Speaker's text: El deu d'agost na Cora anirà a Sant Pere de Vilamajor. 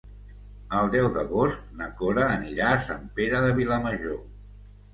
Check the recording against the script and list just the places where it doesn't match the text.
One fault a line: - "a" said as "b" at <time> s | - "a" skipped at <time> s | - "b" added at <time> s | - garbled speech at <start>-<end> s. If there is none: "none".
none